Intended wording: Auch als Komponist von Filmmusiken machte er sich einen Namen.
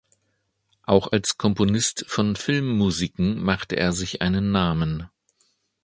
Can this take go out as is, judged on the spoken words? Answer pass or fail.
pass